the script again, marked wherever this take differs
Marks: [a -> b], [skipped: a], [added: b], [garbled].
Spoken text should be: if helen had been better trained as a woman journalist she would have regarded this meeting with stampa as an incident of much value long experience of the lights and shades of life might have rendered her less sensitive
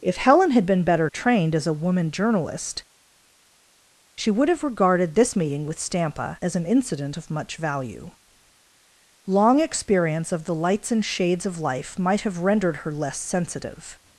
if helen had been better trained as a woman journalist she would have regarded this meeting with stampa as an incident of much value long experience of the lights and shades of life might have rendered her less sensitive